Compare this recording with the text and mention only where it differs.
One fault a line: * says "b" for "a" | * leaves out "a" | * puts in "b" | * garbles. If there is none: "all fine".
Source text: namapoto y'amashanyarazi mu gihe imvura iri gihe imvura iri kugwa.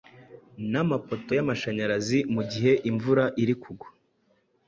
* leaves out "gihe imvura iri"